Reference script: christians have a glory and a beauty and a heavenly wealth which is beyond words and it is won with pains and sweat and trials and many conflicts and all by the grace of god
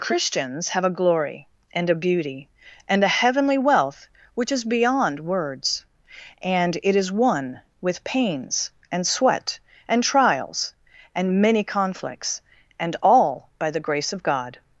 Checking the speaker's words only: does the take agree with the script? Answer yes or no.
yes